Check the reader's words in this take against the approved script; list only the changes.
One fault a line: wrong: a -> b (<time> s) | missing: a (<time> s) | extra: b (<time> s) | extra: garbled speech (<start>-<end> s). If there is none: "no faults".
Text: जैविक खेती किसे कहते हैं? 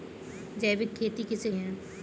missing: कहते (1.5 s)